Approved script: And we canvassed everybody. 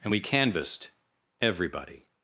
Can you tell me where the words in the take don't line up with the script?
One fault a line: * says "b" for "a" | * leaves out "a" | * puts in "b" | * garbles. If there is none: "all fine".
all fine